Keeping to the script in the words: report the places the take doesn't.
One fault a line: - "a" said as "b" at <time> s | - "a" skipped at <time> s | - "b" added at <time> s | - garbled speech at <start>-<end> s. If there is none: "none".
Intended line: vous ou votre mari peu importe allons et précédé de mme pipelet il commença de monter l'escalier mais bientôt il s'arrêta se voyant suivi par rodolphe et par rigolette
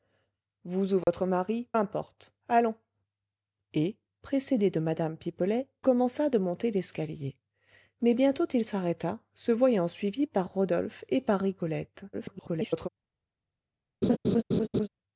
- "peu" skipped at 1.7 s
- "il" skipped at 5.7 s
- garbled speech at 12.1-12.9 s